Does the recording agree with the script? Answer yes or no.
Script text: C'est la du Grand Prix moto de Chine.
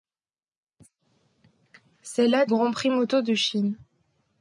no